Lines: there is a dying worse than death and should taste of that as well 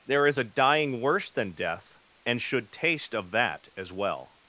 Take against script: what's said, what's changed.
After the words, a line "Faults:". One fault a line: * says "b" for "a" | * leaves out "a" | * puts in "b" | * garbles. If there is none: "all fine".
there is a dying worse than death and should taste of that as well
Faults:
all fine